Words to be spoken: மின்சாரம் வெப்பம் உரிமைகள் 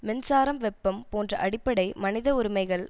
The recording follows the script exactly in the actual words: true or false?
false